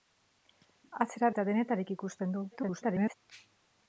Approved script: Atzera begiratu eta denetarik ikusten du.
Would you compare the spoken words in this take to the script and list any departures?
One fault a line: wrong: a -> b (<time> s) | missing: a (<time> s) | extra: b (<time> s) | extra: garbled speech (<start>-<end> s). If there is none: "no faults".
missing: begiratu (1.3 s)
extra: garbled speech (2.5-3.1 s)